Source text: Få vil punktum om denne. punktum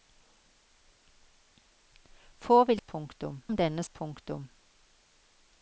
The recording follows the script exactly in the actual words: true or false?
true